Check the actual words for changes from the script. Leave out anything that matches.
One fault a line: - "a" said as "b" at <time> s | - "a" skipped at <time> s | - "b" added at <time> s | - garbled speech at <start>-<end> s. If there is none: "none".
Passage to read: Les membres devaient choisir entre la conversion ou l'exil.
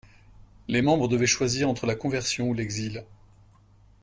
none